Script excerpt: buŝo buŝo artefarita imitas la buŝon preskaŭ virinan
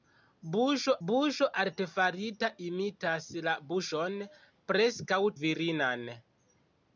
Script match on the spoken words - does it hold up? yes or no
yes